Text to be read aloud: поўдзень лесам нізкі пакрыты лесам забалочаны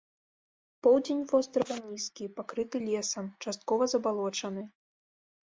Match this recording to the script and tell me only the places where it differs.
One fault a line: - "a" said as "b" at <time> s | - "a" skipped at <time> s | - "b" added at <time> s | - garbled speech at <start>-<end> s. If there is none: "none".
- "лесам" said as "вострава" at 1.3 s
- "часткова" added at 3.5 s